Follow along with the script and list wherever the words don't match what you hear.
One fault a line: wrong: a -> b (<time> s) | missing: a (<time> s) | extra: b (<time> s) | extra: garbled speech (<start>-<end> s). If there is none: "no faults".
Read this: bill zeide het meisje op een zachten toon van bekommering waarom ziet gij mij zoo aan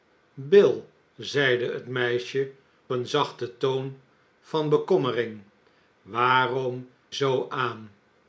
missing: op (2.5 s)
missing: ziet gij mij (6.9 s)